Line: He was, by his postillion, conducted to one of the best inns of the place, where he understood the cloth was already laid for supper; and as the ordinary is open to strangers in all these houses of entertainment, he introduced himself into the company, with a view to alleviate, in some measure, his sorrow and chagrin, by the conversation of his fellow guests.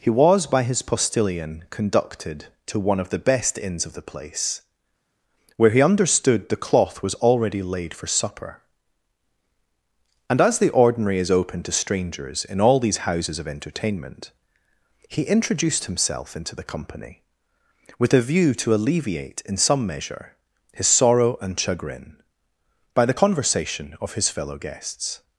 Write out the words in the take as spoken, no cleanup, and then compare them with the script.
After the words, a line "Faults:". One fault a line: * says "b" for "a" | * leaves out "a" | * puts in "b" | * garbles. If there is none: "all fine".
He was, by his postillion, conducted to one of the best inns of the place, where he understood the cloth was already laid for supper; and as the ordinary is open to strangers in all these houses of entertainment, he introduced himself into the company, with a view to alleviate, in some measure, his sorrow and chagrin, by the conversation of his fellow guests.
Faults:
all fine